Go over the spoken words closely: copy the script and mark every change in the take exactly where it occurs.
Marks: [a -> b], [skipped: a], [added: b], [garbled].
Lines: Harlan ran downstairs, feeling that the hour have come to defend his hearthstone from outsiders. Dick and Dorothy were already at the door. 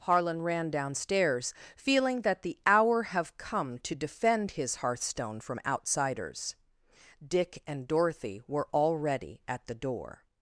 Harlan ran downstairs, feeling that the hour have come to defend his hearthstone from outsiders. Dick and Dorothy were already at the door.